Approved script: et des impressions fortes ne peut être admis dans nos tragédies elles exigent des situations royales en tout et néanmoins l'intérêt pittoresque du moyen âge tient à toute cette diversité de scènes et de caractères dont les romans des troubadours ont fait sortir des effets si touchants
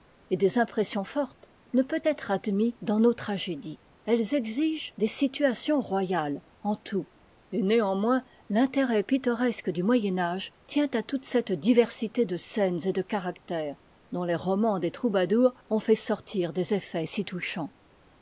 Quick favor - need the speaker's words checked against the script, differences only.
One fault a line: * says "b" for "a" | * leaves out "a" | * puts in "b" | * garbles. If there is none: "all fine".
all fine